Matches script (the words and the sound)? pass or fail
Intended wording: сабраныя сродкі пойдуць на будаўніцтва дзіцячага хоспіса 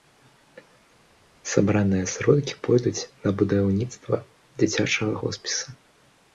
pass